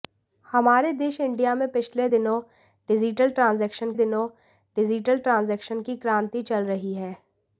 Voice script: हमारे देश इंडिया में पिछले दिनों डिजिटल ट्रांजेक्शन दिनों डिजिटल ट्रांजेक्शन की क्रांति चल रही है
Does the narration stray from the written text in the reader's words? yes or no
no